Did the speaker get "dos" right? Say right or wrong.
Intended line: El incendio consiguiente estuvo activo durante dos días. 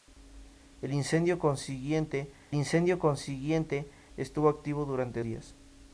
wrong